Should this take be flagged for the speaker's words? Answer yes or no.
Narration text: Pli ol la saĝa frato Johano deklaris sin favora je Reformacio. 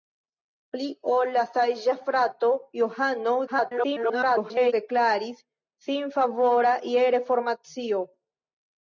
yes